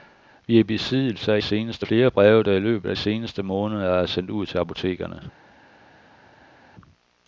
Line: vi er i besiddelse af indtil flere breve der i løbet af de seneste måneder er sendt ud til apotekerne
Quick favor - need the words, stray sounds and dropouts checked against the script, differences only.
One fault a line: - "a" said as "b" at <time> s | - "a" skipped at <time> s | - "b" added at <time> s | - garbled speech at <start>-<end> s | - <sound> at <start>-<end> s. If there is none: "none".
- "indtil" said as "seneste" at 1.4 s
- "de" skipped at 2.9 s